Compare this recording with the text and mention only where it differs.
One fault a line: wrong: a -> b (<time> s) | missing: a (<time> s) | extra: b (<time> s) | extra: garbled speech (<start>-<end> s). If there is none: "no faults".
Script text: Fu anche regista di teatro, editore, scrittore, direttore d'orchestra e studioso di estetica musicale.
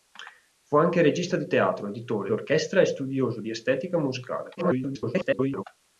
missing: scrittore direttore (2.3 s)
extra: garbled speech (4.6-5.6 s)